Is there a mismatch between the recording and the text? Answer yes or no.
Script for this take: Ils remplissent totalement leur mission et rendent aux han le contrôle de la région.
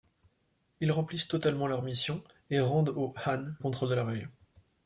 yes